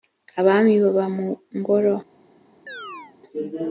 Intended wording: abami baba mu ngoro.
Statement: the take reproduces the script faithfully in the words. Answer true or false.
true